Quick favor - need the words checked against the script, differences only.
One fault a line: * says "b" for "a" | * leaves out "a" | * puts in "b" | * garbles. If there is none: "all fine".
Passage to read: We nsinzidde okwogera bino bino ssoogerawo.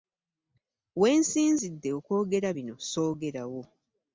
* leaves out "bino"